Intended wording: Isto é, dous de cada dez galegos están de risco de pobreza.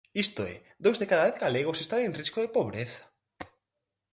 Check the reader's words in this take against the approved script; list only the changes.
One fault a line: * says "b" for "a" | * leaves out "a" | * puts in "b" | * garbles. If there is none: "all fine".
* says "en" for "de"